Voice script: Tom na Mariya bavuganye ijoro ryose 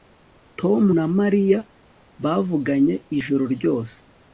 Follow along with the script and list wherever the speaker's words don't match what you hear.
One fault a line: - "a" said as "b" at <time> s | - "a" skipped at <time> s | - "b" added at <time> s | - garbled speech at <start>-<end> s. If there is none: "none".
none